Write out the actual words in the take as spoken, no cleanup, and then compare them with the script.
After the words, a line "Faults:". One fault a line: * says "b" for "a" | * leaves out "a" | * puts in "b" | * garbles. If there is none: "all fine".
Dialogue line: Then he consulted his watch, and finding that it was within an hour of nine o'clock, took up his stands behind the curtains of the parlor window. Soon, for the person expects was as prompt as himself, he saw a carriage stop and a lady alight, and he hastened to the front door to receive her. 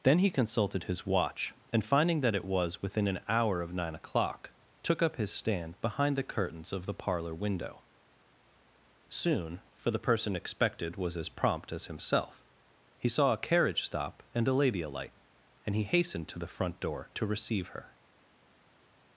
Then he consulted his watch, and finding that it was within an hour of nine o'clock, took up his stand behind the curtains of the parlor window. Soon, for the person expected was as prompt as himself, he saw a carriage stop and a lady alight, and he hastened to the front door to receive her.
Faults:
* says "stand" for "stands"
* says "expected" for "expects"